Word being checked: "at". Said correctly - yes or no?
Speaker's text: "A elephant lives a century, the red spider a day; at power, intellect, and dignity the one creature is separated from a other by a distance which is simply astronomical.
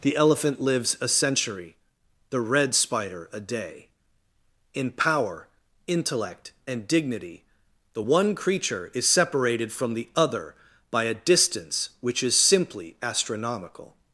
no